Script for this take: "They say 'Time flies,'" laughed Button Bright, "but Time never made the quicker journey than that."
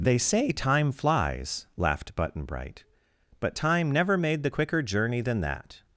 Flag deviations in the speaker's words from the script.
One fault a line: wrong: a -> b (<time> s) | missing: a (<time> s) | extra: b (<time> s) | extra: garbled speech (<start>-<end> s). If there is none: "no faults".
no faults